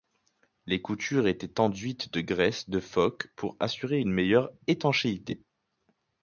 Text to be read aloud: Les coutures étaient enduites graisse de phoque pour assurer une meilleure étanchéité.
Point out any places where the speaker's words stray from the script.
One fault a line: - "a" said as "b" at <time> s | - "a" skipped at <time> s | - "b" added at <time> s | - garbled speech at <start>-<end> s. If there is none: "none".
- "de" added at 2.1 s